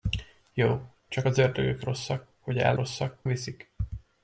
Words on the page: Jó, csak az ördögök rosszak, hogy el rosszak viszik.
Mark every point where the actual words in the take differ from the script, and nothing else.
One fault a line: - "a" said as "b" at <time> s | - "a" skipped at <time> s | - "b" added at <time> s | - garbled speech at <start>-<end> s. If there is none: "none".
none